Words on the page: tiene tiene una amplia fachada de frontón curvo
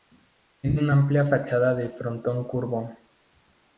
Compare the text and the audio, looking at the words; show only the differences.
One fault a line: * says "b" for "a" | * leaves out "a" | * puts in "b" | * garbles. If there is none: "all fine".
* leaves out "tiene"